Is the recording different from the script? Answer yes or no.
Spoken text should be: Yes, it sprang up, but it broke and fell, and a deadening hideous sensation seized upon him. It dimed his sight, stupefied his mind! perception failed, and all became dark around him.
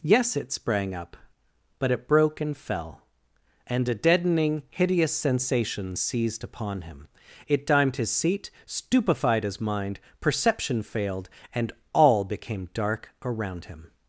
yes